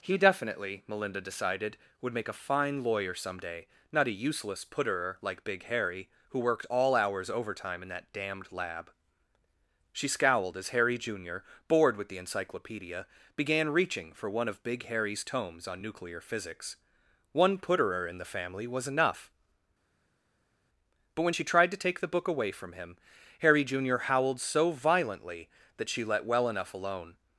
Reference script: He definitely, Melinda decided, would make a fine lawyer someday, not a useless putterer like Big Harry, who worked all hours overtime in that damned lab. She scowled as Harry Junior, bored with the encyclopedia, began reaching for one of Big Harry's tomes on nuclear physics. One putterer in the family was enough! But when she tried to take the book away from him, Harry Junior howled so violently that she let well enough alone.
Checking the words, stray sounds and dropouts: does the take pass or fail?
pass